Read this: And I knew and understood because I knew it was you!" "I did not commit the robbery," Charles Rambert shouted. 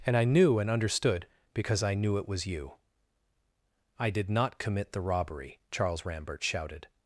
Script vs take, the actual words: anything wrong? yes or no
no